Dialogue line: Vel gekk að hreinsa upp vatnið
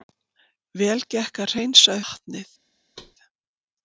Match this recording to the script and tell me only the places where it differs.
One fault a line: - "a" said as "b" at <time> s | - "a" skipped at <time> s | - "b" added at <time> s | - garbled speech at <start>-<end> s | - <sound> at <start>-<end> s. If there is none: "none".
- "upp" skipped at 2.0 s
- thud at 3.0-3.2 s